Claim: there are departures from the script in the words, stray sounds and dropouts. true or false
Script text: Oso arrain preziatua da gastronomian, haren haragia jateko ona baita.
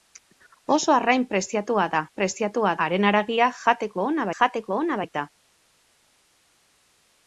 true